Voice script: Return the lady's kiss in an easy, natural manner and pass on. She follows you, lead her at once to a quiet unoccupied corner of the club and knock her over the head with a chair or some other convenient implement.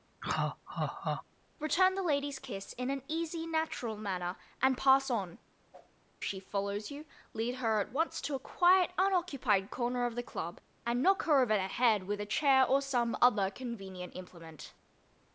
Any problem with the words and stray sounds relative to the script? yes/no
yes